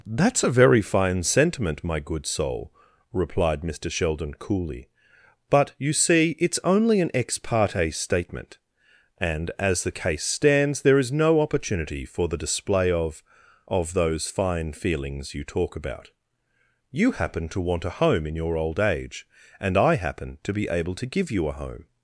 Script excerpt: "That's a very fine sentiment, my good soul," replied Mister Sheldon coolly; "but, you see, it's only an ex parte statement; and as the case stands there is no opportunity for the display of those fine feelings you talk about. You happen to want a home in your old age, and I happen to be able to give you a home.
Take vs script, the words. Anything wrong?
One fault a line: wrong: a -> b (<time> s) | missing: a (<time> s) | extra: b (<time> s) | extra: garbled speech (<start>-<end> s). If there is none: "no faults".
extra: of (13.7 s)